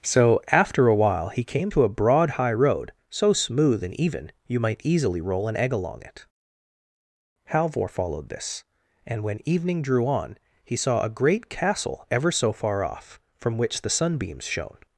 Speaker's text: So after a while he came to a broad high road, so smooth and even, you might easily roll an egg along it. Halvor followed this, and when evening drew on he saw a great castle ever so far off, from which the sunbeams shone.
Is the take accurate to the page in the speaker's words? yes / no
yes